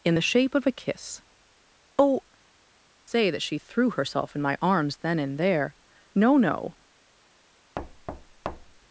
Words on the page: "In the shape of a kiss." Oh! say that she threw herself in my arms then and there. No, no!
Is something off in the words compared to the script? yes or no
no